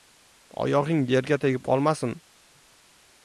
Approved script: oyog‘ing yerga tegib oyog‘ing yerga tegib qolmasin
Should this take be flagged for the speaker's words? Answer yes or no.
yes